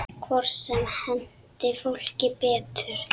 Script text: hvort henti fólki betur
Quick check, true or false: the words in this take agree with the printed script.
false